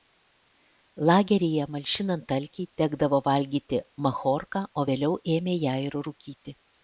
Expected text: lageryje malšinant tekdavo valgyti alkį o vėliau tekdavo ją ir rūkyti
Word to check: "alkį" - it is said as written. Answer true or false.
false